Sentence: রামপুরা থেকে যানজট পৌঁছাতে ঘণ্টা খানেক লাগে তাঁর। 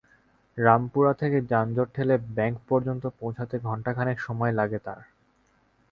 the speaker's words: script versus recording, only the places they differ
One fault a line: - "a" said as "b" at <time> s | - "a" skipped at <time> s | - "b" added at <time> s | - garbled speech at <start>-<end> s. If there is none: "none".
- "ঠেলে ব্যাংক পর্যন্ত" added at 1.9 s
- "সময়" added at 4.2 s